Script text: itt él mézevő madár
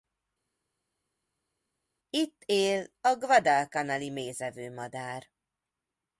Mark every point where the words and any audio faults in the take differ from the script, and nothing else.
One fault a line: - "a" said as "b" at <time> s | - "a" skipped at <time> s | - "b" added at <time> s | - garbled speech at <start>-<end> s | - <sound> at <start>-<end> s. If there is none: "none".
- "a guadalcanali" added at 3.0 s